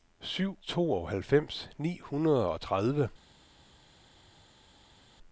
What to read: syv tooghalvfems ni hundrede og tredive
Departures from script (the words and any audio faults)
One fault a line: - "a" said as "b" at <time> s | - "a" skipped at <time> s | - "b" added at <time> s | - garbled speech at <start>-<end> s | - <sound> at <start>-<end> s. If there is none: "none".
none